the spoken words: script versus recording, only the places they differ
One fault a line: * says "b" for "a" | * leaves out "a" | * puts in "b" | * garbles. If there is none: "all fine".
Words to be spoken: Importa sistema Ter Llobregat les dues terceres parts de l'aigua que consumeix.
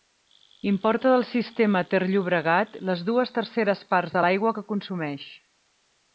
* puts in "del"